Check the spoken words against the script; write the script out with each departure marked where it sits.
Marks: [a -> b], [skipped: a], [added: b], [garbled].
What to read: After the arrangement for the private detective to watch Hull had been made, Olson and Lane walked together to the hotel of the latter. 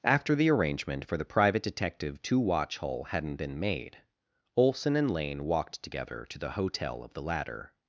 After the arrangement for the private detective to watch Hull [had -> hadn't] been made, Olson and Lane walked together to the hotel of the latter.